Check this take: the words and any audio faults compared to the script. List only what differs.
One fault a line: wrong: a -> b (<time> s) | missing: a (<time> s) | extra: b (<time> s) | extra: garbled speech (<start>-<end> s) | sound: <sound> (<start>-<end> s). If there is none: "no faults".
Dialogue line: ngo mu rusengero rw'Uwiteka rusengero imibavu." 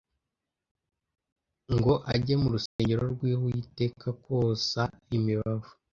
extra: ajye (2.1 s)
sound: dropout (2.7-2.8 s)
wrong: rusengero -> kosa (4.2 s)